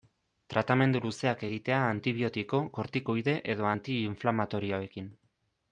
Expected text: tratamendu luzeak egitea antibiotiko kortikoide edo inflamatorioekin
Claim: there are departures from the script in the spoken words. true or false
true